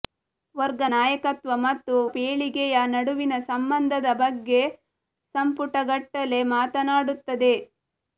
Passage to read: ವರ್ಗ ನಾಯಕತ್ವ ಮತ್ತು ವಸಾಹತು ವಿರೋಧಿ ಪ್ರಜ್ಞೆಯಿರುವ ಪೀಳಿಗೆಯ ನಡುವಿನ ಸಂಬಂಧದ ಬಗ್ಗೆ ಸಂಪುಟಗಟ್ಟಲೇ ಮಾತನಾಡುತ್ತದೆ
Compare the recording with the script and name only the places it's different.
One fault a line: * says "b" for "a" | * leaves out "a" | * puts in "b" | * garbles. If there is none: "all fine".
* leaves out "ವಸಾಹತು ವಿರೋಧಿ ಪ್ರಜ್ಞೆಯಿರುವ"